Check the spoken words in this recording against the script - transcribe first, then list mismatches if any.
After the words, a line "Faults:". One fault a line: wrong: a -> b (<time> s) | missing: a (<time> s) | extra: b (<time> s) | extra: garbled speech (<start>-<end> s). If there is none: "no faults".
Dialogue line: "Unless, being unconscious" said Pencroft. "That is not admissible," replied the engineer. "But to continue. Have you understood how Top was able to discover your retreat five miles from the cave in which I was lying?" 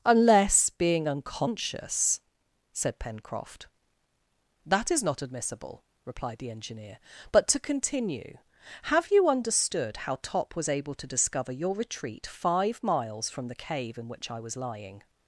"Unless, being unconscious" said Pencroft. "That is not admissible," replied the engineer. "But to continue. Have you understood how Top was able to discover your retreat five miles from the cave in which I was lying?"
Faults:
no faults